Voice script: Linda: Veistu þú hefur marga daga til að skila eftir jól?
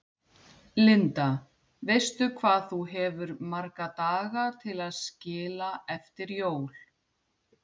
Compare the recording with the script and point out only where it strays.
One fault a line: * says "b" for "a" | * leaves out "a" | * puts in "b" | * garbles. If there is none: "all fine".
* puts in "hvað"